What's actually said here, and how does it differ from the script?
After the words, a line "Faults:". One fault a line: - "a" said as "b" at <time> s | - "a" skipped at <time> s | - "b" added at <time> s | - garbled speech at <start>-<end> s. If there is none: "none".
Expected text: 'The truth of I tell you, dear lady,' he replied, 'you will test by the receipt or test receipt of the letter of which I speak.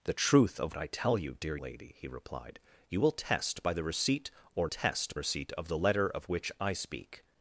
'The truth of I tell you, dear lady,' he replied, 'you will test by the receipt or test receipt of the letter of which I speak.
Faults:
none